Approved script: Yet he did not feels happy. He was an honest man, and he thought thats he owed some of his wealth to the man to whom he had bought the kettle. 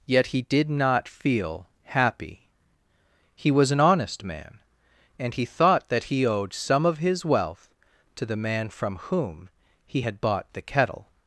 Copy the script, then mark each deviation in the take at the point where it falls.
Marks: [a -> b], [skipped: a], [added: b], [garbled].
Yet he did not [feels -> feel] happy. He was an honest man, and he thought [thats -> that] he owed some of his wealth to the man [to -> from] whom he had bought the kettle.